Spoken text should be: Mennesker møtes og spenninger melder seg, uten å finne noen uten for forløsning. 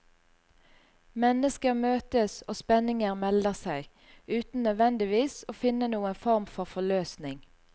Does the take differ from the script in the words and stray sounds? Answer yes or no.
yes